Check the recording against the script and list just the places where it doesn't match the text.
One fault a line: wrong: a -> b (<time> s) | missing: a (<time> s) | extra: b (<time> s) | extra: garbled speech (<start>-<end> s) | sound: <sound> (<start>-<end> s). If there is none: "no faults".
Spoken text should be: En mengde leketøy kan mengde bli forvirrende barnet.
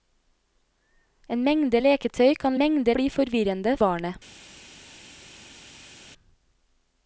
no faults